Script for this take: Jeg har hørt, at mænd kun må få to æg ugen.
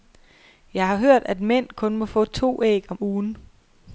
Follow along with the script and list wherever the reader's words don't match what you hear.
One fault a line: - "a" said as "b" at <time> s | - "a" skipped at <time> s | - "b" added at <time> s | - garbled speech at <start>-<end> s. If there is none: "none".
- "om" added at 2.9 s